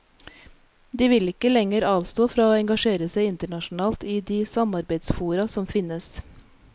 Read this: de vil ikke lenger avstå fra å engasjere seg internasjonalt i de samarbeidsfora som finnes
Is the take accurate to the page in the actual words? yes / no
yes